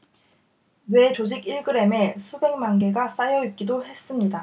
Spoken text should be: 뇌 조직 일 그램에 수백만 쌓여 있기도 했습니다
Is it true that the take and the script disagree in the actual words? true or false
true